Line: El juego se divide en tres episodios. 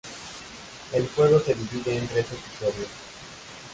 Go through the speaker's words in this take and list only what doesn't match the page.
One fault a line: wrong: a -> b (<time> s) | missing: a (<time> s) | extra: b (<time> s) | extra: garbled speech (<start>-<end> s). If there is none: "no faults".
no faults